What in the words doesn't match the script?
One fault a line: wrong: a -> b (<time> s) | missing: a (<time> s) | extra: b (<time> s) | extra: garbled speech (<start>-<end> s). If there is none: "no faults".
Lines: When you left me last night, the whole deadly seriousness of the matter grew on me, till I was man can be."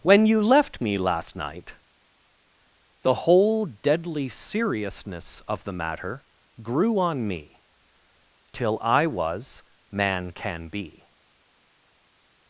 no faults